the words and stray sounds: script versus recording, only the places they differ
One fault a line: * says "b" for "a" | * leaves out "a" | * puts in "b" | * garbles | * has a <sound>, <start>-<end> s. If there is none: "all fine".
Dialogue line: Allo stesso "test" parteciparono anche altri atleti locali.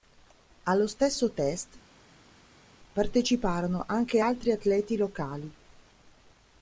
all fine